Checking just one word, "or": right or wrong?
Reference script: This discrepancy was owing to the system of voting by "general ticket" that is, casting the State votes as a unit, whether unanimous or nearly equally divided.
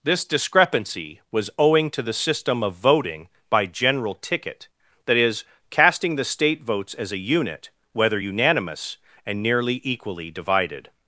wrong